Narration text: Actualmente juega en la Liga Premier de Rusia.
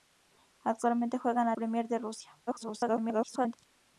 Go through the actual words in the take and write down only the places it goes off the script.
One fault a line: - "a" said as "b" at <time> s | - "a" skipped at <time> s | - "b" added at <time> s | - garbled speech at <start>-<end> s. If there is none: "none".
- "Liga" skipped at 1.6 s
- garbled speech at 2.5-3.6 s